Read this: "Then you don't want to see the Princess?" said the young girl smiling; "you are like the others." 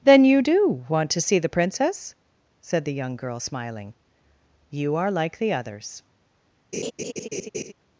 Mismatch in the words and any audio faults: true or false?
true